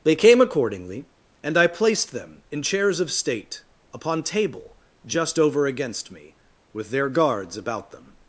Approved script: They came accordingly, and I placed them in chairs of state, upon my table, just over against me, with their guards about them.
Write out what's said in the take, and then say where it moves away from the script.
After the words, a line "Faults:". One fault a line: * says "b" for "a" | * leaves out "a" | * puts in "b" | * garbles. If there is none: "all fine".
They came accordingly, and I placed them in chairs of state, upon table, just over against me, with their guards about them.
Faults:
* leaves out "my"